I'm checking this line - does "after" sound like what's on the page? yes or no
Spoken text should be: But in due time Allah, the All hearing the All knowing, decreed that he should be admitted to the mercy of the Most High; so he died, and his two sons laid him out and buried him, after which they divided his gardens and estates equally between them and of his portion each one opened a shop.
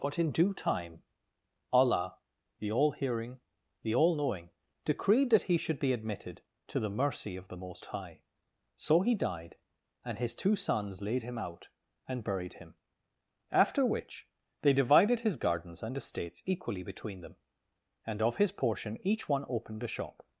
yes